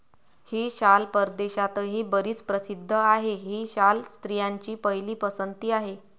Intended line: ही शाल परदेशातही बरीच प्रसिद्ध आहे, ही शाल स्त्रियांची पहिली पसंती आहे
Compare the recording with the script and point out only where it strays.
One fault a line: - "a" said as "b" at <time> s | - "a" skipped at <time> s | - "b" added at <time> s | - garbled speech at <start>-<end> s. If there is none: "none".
none